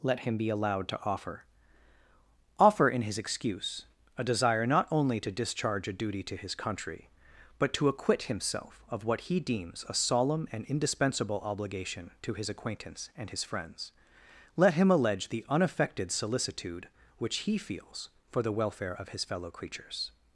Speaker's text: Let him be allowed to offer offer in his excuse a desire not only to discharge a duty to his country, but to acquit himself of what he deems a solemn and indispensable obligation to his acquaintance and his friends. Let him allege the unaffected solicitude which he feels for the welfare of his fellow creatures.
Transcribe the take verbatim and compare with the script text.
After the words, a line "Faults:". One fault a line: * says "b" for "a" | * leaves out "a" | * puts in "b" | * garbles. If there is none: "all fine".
Let him be allowed to offer offer in his excuse a desire not only to discharge a duty to his country, but to acquit himself of what he deems a solemn and indispensable obligation to his acquaintance and his friends. Let him allege the unaffected solicitude which he feels for the welfare of his fellow creatures.
Faults:
all fine